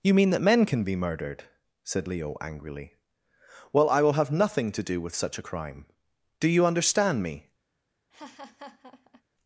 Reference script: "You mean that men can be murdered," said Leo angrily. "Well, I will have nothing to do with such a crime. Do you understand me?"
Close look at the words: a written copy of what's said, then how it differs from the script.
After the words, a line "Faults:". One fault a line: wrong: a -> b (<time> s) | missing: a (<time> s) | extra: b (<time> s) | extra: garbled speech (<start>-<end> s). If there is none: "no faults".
"You mean that men can be murdered," said Leo angrily. "Well, I will have nothing to do with such a crime. Do you understand me?"
Faults:
no faults